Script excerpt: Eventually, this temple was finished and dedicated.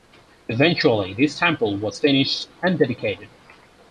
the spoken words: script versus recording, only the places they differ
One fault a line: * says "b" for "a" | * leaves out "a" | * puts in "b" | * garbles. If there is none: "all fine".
all fine